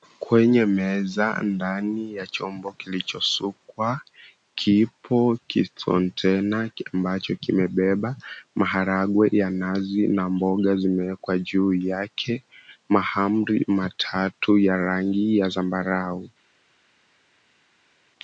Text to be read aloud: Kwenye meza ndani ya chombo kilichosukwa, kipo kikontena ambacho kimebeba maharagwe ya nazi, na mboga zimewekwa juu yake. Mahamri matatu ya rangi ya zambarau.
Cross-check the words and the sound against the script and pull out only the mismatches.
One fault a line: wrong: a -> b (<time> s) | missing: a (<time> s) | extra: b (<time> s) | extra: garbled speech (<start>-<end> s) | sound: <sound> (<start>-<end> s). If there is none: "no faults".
no faults